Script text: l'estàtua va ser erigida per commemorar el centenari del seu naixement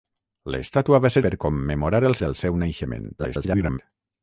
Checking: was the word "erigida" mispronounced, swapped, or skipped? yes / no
yes